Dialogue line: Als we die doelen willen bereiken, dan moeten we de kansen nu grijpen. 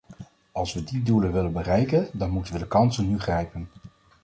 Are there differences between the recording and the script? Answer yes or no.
no